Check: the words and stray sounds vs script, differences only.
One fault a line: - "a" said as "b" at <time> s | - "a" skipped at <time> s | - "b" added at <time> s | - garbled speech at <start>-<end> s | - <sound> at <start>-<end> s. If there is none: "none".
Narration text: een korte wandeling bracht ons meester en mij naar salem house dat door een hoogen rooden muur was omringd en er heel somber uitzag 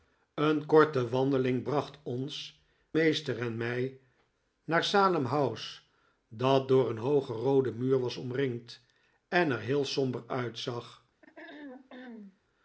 - throat clearing at 11.2-12.4 s